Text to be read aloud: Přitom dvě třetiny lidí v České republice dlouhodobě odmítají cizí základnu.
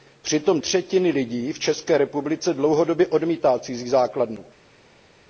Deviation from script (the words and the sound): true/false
true